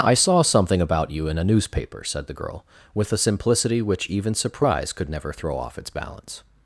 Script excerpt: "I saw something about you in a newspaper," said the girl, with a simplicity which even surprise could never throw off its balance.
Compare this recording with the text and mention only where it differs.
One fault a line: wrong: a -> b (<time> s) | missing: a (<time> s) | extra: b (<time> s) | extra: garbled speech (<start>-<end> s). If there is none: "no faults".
no faults